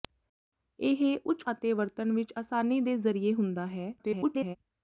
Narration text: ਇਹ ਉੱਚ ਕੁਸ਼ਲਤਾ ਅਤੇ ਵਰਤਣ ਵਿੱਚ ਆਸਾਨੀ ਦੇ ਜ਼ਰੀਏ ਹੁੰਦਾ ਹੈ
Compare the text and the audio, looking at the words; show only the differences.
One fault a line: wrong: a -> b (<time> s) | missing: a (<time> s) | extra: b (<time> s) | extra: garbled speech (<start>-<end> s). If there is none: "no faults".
missing: ਕੁਸ਼ਲਤਾ (1.4 s)
extra: garbled speech (4.0-4.6 s)